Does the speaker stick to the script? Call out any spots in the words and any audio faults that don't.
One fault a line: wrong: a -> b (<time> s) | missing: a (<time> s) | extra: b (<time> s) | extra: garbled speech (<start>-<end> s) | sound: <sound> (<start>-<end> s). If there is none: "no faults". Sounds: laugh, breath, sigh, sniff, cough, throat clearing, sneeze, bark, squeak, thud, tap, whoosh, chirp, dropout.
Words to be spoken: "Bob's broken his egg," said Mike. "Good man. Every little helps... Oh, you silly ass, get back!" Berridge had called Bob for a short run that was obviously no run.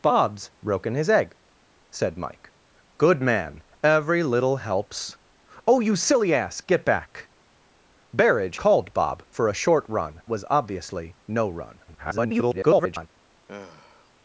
missing: had (8.6 s)
missing: that (10.2 s)
extra: garbled speech (11.9-13.1 s)
sound: sigh (13.5-14.1 s)